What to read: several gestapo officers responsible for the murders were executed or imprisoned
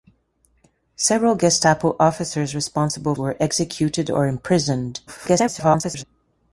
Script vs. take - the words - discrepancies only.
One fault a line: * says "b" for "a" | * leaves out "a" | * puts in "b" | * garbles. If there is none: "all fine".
* leaves out "for the murders"
* garbles